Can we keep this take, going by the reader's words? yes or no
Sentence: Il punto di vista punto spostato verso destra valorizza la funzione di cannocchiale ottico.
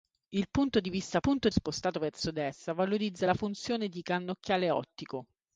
yes